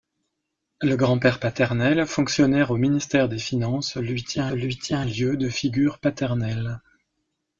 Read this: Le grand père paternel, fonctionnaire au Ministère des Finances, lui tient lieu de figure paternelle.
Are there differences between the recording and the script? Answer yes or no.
yes